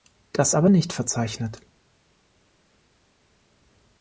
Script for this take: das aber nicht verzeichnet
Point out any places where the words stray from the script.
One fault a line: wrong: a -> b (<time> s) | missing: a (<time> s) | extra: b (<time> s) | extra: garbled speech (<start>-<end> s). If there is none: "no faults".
no faults